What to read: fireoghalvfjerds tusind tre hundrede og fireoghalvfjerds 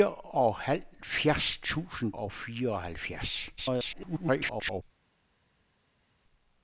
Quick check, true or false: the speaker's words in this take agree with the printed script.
false